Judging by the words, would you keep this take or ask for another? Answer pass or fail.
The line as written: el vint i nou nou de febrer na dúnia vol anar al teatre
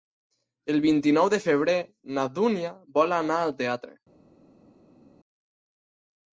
fail